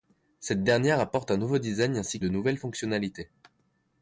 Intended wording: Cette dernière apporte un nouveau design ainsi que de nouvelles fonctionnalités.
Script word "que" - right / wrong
wrong